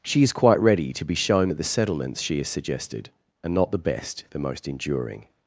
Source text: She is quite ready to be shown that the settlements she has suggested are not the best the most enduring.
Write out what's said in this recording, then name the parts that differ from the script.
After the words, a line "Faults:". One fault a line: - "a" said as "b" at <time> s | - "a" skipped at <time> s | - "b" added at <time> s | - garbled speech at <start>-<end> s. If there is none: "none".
She is quite ready to be shown that the settlements she has suggested are not the best the most enduring.
Faults:
none